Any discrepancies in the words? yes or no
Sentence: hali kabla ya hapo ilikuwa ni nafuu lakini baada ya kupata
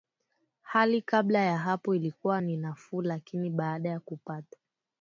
no